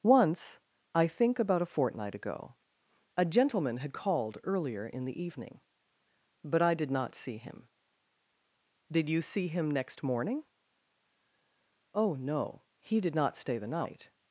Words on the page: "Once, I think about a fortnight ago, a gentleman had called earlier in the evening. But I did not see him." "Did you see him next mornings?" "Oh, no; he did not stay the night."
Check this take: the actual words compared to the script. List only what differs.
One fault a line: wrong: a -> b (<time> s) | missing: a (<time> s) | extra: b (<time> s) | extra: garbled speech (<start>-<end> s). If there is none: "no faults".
wrong: mornings -> morning (10.0 s)